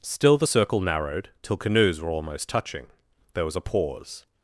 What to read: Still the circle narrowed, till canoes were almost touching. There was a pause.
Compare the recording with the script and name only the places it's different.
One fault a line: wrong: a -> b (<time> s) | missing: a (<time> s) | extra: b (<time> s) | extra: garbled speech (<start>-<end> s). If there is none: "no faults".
no faults